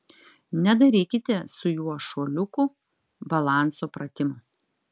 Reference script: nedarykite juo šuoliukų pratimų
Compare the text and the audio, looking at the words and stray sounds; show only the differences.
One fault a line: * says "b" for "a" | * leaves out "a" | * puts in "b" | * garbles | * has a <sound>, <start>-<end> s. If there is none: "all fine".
* puts in "su"
* puts in "balanso"